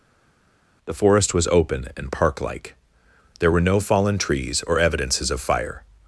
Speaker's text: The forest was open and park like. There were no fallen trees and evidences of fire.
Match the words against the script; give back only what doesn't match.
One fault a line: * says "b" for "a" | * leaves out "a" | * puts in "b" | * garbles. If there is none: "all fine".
* says "or" for "and"